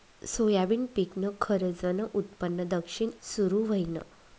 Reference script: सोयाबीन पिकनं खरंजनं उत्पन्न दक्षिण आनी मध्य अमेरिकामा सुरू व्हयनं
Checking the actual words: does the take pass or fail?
fail